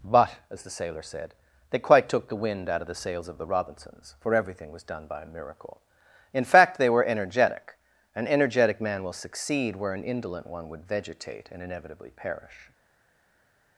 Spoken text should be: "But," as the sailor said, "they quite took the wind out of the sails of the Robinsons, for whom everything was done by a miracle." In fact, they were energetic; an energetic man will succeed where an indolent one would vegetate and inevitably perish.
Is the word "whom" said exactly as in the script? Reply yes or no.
no